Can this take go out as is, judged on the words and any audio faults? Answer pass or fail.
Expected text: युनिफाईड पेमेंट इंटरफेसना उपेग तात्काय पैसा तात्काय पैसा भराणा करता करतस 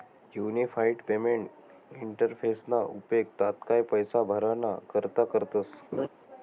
fail